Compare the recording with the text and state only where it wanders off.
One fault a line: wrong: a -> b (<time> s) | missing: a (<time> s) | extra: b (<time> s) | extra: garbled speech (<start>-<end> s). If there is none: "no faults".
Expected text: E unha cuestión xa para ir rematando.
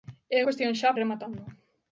missing: unha (0.4 s)
missing: para (0.9 s)